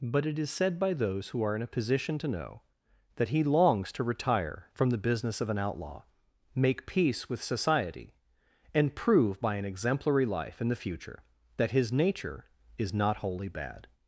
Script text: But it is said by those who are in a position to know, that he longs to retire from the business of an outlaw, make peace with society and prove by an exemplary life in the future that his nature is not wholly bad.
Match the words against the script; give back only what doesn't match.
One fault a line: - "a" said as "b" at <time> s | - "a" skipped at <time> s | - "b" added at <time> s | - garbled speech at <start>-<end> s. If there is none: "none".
none